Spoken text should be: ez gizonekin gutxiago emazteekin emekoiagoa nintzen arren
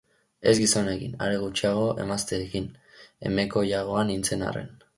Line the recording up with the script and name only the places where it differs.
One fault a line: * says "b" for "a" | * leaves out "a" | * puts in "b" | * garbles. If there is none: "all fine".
* puts in "are"